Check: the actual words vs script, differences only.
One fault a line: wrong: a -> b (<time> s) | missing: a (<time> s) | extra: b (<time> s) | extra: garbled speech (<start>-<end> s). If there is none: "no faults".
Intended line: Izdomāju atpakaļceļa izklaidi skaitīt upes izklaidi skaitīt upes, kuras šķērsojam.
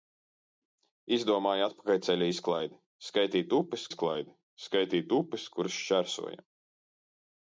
no faults